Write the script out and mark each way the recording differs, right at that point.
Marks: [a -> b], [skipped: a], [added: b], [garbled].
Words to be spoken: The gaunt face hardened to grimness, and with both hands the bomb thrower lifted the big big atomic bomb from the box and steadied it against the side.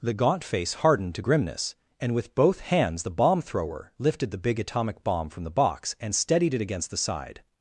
The gaunt face hardened to grimness, and with both hands the bomb thrower lifted the big [skipped: big] atomic bomb from the box and steadied it against the side.